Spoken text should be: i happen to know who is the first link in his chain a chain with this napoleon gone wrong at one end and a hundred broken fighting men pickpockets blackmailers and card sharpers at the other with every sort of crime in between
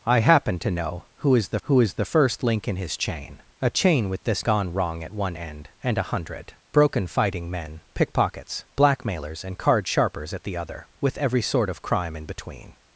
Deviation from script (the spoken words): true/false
true